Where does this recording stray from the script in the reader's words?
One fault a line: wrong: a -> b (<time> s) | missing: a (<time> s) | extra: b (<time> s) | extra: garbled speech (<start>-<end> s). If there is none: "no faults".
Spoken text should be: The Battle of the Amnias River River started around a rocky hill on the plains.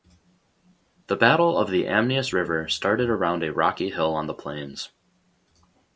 missing: River (2.7 s)